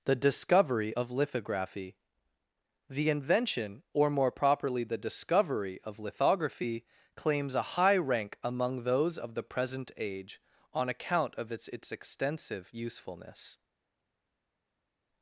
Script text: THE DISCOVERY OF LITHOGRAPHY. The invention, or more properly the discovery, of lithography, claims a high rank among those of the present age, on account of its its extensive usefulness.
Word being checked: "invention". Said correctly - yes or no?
yes